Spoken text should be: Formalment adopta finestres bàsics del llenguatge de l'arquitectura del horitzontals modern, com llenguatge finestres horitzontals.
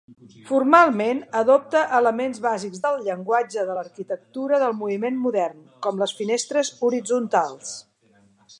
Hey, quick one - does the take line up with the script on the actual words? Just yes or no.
no